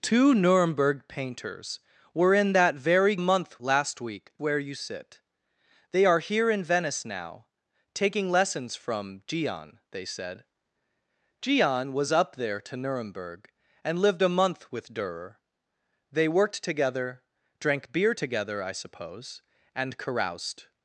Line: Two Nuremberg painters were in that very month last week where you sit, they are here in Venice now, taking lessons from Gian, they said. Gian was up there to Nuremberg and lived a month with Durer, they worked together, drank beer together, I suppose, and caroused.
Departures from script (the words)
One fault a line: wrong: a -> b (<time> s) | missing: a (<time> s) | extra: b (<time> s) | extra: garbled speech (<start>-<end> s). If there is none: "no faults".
no faults